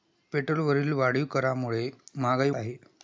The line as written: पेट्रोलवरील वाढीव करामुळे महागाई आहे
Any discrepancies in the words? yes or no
no